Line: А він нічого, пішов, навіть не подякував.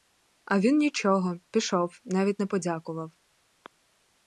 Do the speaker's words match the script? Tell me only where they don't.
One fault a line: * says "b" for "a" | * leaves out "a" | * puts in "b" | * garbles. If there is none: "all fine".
all fine